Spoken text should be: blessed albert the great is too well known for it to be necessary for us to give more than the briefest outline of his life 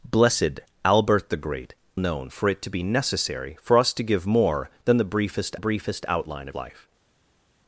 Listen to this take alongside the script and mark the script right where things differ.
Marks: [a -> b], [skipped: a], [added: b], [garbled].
blessed albert the great [skipped: is too well] known for it to be necessary for us to give more than the briefest [added: briefest] outline of [skipped: his] life